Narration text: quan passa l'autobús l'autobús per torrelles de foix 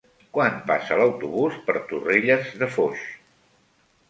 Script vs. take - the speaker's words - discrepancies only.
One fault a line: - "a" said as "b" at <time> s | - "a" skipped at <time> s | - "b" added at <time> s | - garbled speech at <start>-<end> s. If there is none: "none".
- "l'autobús" skipped at 1.6 s